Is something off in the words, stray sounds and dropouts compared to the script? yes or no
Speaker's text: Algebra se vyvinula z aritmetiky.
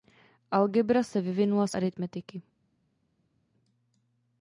no